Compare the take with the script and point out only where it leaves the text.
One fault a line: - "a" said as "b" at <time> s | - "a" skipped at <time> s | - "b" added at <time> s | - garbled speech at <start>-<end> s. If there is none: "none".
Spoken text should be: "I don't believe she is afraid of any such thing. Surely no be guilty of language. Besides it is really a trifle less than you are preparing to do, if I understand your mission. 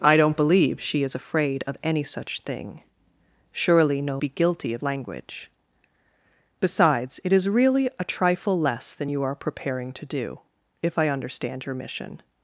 none